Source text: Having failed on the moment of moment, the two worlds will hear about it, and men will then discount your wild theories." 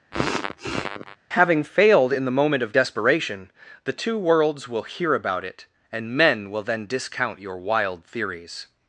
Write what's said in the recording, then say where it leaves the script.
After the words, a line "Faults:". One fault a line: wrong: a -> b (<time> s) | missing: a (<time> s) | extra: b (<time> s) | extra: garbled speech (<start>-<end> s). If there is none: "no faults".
Having failed in the moment of desperation, the two worlds will hear about it, and men will then discount your wild theories."
Faults:
wrong: on -> in (2.1 s)
wrong: moment -> desperation (2.7 s)